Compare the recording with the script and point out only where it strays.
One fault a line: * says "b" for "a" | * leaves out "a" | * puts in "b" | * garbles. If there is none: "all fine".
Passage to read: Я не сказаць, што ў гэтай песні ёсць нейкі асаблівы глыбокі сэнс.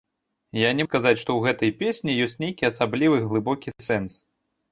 all fine